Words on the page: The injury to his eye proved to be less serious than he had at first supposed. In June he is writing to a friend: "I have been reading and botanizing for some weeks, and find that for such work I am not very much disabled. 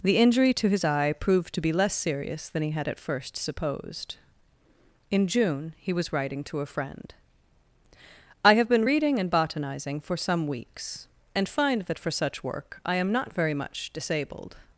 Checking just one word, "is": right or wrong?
wrong